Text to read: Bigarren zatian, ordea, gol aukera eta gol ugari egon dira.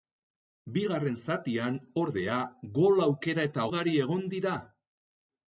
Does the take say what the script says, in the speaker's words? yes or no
no